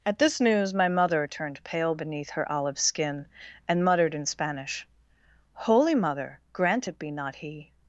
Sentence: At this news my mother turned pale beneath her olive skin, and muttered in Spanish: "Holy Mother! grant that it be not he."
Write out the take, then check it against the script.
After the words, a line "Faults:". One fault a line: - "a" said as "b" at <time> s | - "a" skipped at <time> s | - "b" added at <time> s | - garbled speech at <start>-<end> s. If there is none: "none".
At this news my mother turned pale beneath her olive skin, and muttered in Spanish: "Holy Mother! grant it be not he."
Faults:
- "that" skipped at 6.9 s